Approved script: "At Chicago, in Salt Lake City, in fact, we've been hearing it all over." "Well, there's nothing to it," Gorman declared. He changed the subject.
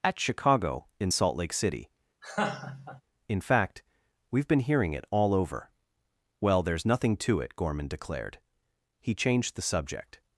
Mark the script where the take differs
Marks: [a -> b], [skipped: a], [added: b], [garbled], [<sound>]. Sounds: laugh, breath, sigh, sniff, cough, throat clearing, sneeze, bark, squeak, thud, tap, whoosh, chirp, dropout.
"At Chicago, in Salt Lake City, [laugh] in fact, we've been hearing it all over." "Well, there's nothing to it," Gorman declared. He changed the subject.